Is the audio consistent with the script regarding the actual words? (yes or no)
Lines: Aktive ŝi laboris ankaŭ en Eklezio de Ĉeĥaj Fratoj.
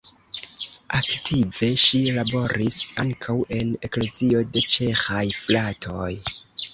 yes